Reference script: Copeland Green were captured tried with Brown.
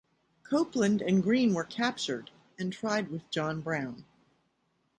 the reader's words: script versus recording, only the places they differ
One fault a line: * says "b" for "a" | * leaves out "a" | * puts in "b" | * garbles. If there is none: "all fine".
* puts in "and"
* puts in "and"
* puts in "John"